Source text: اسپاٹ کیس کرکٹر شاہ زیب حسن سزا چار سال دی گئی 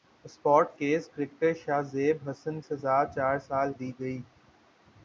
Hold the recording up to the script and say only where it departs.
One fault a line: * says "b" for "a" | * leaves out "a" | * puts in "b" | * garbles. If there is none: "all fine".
all fine